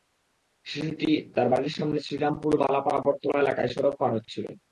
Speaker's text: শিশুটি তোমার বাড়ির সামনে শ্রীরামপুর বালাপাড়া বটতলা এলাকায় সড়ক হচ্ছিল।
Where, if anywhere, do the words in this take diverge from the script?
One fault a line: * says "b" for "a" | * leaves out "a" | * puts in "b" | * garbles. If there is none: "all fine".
* says "তার" for "তোমার"
* puts in "পার"